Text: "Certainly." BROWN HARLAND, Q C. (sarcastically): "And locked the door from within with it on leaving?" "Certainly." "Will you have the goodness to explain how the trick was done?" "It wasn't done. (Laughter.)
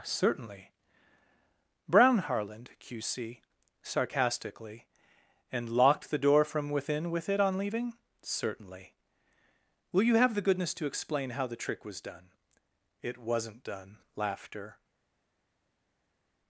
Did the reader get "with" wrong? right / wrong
right